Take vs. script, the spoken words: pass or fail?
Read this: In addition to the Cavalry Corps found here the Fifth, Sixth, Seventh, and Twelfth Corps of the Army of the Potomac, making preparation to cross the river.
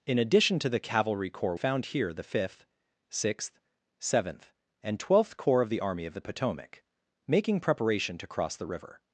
pass